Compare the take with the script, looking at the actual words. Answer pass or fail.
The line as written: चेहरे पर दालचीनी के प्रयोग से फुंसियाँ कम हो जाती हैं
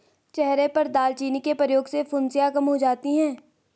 pass